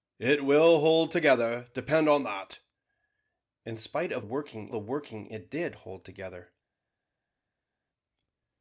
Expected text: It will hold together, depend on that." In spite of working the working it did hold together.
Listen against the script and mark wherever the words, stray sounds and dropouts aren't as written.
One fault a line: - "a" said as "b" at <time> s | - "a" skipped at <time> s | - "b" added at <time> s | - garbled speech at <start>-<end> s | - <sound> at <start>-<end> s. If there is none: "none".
none